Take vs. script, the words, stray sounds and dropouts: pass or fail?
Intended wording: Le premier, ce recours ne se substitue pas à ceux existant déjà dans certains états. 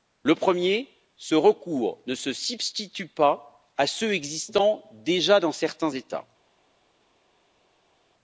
pass